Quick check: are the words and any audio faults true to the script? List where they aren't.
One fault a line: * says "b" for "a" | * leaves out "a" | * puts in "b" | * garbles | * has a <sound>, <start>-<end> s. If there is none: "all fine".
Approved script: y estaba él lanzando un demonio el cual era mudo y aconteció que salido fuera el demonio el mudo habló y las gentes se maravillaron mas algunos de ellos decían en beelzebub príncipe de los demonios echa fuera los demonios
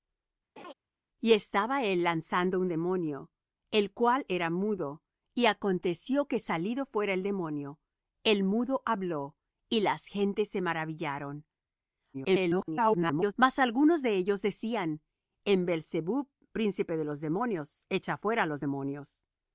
* has a laugh, 0.6-0.7 s
* garbles